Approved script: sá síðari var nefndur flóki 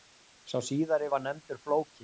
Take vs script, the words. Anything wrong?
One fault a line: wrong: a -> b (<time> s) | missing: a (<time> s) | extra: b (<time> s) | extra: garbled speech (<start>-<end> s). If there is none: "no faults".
no faults